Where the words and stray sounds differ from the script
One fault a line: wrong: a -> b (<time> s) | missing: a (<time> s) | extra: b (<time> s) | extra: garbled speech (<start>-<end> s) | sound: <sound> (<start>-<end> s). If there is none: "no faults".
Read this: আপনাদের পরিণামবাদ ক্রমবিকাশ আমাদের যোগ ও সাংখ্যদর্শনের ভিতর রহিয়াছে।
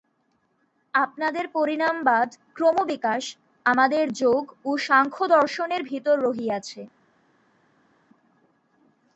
no faults